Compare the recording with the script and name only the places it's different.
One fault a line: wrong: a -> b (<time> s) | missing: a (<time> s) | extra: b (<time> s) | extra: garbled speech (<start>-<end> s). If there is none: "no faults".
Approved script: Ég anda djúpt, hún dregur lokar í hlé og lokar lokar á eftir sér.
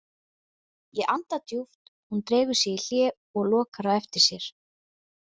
wrong: lokar -> sig (2.6 s)
missing: lokar (3.9 s)